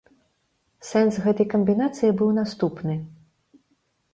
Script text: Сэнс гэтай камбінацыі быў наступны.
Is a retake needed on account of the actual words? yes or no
no